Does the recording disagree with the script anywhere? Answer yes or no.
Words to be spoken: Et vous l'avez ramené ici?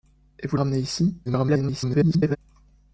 yes